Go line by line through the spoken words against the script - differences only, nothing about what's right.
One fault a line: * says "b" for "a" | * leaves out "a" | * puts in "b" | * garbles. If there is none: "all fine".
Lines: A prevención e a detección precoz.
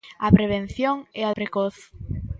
* leaves out "detección"